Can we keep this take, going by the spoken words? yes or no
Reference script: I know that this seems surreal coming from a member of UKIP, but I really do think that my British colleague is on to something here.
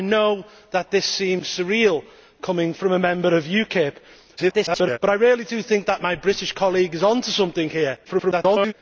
no